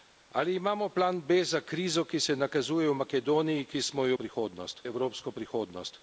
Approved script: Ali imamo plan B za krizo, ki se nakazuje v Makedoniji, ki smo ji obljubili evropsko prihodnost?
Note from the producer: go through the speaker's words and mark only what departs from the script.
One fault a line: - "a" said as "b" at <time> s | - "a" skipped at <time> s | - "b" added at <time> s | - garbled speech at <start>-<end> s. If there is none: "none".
- "obljubili" said as "prihodnost" at 4.1 s